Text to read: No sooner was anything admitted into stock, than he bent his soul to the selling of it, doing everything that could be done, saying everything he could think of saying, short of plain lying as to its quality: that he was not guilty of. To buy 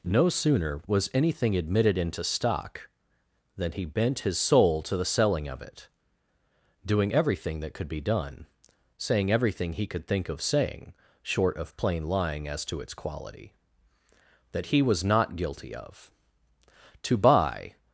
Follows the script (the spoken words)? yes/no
yes